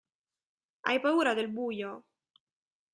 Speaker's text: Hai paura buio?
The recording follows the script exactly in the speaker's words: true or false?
false